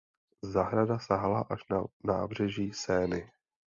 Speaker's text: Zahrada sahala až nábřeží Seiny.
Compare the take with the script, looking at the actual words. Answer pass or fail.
fail